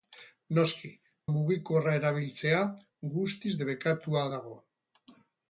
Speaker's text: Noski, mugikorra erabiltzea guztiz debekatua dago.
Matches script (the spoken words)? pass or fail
pass